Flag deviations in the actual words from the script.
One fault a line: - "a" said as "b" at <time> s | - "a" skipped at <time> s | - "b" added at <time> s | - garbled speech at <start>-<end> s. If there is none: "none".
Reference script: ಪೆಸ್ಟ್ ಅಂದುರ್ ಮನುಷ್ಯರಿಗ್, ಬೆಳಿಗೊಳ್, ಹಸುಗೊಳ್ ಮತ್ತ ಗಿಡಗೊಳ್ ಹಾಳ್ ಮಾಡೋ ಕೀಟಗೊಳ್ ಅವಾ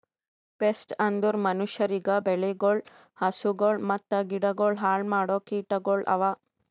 none